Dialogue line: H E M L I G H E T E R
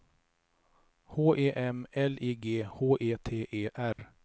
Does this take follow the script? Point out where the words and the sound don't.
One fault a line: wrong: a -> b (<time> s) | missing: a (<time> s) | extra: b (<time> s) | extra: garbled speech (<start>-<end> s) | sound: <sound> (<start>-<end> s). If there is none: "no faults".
sound: dropout (3.9-4.0 s)